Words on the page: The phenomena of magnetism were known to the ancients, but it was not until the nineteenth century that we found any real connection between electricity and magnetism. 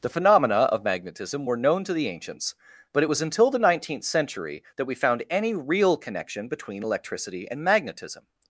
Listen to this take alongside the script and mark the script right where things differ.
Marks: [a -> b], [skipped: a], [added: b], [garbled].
The phenomena of magnetism were known to the ancients, but it was [skipped: not] until the nineteenth century that we found any real connection between electricity and magnetism.